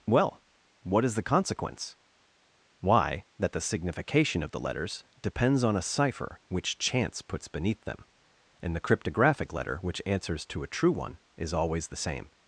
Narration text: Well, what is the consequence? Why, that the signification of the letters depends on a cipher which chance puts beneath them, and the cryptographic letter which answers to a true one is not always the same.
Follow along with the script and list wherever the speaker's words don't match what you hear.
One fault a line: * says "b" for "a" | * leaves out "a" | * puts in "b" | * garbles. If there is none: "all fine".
* leaves out "not"